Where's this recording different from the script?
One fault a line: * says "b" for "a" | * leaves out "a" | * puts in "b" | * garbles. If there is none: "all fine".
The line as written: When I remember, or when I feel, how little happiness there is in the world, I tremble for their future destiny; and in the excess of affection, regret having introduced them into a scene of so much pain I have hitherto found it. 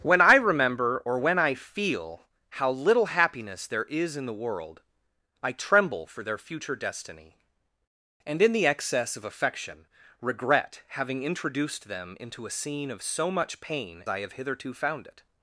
all fine